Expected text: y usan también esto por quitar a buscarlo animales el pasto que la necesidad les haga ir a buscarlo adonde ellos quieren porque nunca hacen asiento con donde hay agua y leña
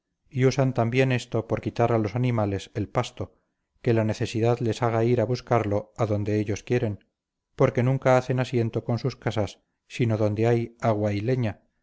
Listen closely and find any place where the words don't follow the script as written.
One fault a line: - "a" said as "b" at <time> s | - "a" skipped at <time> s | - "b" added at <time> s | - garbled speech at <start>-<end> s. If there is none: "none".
- "buscarlo" said as "los" at 2.0 s
- "sus casas sino" added at 9.0 s